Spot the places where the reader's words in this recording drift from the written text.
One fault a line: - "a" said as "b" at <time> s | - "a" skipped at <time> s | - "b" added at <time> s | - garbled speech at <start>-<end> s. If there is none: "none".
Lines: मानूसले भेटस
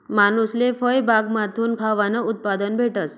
- "फयबागमाथून खावानं उत्पादन" added at 0.7 s